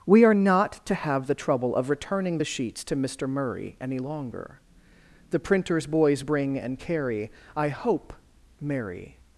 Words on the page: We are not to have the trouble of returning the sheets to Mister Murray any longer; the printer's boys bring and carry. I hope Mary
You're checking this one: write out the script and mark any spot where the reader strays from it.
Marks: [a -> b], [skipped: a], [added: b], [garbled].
We are not to have the trouble of returning the sheets to Mister Murray any longer; the printer's boys bring and carry. I hope Mary